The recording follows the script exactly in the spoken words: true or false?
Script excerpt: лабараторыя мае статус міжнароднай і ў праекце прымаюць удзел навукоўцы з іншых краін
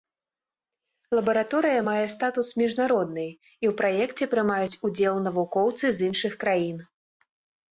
true